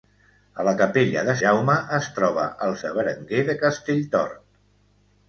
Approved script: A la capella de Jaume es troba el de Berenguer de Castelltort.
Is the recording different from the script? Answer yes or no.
no